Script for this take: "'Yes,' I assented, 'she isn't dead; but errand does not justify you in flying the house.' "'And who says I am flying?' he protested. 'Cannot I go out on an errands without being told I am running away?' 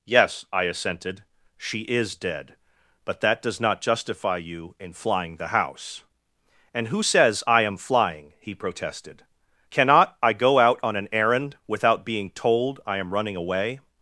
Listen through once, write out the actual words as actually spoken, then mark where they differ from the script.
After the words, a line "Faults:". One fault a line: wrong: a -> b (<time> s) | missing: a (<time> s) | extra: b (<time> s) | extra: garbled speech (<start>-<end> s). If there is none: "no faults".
"'Yes,' I assented, 'she is dead; but that does not justify you in flying the house.' "'And who says I am flying?' he protested. 'Cannot I go out on an errand without being told I am running away?'
Faults:
wrong: isn't -> is (1.8 s)
wrong: errand -> that (3.2 s)
wrong: errands -> errand (11.1 s)